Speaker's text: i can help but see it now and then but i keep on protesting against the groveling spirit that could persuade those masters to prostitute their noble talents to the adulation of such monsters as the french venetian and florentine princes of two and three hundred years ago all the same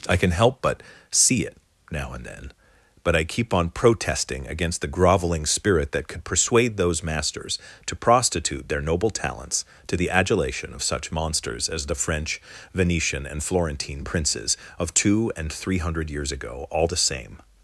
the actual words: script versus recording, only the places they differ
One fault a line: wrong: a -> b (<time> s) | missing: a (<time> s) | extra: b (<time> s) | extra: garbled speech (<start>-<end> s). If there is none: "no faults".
no faults